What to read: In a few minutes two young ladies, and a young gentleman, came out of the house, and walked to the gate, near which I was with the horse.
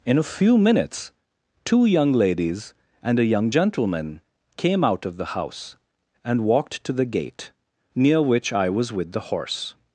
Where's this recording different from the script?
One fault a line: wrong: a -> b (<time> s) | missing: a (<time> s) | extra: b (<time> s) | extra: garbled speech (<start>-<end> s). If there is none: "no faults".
no faults